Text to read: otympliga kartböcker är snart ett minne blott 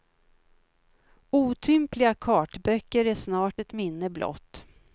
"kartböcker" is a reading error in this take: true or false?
false